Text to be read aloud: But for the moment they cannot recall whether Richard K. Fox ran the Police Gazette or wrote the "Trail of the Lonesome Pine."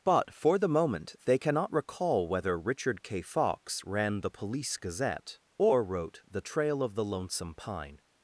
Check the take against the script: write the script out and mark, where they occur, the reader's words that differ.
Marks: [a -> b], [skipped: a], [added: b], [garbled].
But for the moment they cannot recall whether Richard K. Fox ran the Police Gazette or wrote the "Trail of the Lonesome Pine."